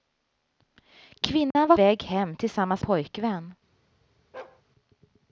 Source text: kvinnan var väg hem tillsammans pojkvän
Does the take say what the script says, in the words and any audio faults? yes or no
no